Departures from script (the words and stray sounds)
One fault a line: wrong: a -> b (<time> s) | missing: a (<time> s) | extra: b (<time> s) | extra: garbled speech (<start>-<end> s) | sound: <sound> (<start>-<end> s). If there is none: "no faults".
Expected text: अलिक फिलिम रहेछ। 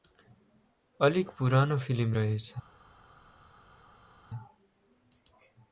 extra: पुरानो (1.4 s)